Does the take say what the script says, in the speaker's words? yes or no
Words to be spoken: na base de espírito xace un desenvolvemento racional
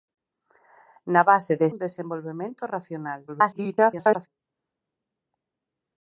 no